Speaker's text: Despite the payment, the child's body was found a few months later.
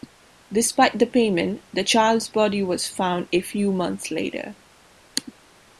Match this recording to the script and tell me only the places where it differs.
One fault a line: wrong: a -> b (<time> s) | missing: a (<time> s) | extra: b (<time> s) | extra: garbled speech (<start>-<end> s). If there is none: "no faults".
no faults